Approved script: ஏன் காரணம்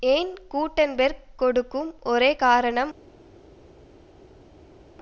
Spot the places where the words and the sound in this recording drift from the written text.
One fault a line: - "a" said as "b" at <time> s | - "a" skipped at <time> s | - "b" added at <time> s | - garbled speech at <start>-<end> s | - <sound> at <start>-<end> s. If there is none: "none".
- "கூட்டன்பேர்க் கொடுக்கும் ஒரே" added at 0.5 s